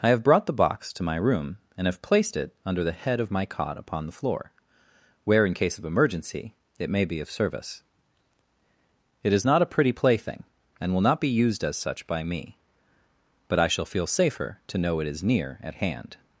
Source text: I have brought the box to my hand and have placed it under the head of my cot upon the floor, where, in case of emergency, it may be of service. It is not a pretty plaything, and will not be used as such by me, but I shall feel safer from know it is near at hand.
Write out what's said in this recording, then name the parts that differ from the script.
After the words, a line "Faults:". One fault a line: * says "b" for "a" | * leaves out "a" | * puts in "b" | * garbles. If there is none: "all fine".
I have brought the box to my room and have placed it under the head of my cot upon the floor, where, in case of emergency, it may be of service. It is not a pretty plaything, and will not be used as such by me, but I shall feel safer to know it is near at hand.
Faults:
* says "room" for "hand"
* says "to" for "from"